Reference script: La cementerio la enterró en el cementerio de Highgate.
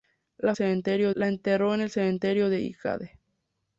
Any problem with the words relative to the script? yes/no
no